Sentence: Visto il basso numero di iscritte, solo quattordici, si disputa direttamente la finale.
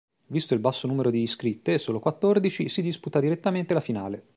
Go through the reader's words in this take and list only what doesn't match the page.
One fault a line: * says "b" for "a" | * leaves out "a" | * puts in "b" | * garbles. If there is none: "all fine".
all fine